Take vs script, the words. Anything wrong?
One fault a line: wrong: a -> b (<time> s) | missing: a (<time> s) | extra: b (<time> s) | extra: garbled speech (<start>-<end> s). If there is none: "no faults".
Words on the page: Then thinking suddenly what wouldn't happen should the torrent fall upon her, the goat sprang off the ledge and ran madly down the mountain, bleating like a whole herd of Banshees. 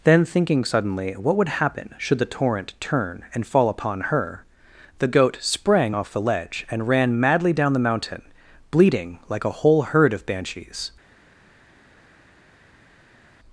wrong: wouldn't -> would (1.4 s)
extra: turn and (2.8 s)